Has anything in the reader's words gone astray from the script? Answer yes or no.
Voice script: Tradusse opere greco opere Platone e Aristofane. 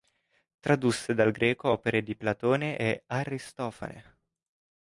yes